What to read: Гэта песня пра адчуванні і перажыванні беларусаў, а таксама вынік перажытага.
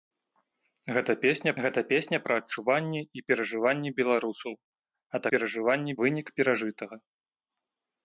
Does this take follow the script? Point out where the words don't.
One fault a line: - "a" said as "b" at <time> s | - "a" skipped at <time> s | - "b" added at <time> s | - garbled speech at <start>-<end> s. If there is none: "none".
- "гэта песня" added at 1.6 s
- "таксама" said as "перажыванні" at 5.3 s